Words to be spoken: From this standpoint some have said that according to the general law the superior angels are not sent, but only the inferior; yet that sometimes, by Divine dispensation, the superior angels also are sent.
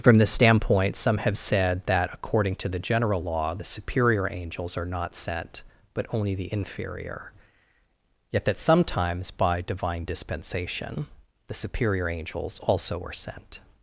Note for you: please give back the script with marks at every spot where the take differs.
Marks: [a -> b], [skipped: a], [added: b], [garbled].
From this standpoint some have said that according to the general law the superior angels are not sent, but only the inferior; yet that sometimes, by Divine dispensation, the superior angels also are sent.